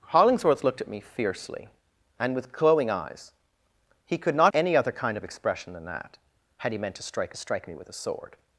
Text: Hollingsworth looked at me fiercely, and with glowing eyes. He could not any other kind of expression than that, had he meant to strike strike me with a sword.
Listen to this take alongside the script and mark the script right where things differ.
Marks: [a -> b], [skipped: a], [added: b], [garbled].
Hollingsworth looked at me fiercely, and with glowing eyes. He could not any other kind of expression than that, had he meant to strike strike me with a sword.